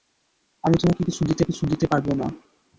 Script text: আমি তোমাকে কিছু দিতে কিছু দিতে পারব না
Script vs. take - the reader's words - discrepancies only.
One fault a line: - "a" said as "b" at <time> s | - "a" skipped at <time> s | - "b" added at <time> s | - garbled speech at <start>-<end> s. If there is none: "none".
none